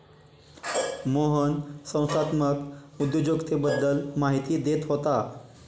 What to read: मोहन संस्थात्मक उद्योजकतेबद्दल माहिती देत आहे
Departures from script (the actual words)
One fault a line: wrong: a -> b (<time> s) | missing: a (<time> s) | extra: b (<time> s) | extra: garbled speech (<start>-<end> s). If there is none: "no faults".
wrong: आहे -> होता (4.9 s)